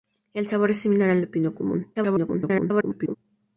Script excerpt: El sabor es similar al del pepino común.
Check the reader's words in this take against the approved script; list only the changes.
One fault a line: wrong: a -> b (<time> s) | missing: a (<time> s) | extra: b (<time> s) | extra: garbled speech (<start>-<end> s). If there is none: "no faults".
missing: del (1.2 s)
extra: garbled speech (2.0-3.2 s)